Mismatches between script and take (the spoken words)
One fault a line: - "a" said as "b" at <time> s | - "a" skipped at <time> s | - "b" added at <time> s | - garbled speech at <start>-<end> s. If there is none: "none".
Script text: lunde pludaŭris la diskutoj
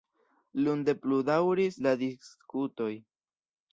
none